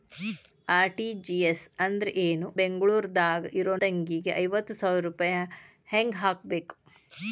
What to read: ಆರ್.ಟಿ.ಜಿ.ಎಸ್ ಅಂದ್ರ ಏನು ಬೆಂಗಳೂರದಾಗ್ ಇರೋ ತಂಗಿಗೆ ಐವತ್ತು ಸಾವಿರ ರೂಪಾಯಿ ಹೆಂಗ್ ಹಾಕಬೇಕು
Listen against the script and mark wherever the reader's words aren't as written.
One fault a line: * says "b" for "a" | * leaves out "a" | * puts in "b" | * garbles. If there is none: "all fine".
all fine